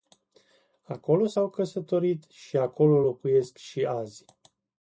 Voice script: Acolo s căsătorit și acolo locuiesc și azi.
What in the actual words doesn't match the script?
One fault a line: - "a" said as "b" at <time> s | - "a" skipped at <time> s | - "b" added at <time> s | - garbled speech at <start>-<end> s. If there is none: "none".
- "au" added at 1.3 s